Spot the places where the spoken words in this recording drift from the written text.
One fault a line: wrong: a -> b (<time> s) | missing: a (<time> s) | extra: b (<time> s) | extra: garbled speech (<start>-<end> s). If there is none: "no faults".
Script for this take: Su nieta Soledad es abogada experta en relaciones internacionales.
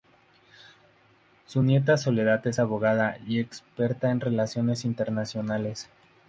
extra: y (3.3 s)